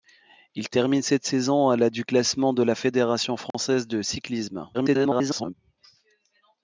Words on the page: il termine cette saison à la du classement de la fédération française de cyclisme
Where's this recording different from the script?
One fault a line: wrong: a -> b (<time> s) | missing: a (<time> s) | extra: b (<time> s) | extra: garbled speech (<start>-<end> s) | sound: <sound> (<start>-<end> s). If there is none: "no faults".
sound: dropout (3.5-3.5 s)
extra: garbled speech (4.7-5.5 s)